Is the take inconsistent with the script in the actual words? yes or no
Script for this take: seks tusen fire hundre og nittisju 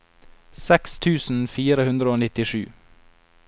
no